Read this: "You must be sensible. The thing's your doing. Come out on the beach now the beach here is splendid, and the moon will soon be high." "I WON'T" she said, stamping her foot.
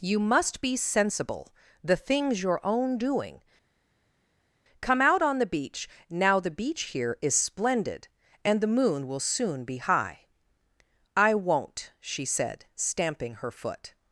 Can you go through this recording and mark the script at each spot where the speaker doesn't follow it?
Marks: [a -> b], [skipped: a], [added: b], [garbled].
"You must be sensible. The thing's your [added: own] doing. Come out on the beach now the beach here is splendid, and the moon will soon be high." "I WON'T" she said, stamping her foot.